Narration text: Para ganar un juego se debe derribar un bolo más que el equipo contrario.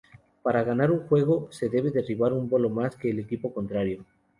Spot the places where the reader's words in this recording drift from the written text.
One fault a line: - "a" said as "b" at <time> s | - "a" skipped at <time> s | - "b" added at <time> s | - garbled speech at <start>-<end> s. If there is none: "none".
none